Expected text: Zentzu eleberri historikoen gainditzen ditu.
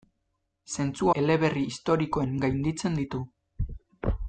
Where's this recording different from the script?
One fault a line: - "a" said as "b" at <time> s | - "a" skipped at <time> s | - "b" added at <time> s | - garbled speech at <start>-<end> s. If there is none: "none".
none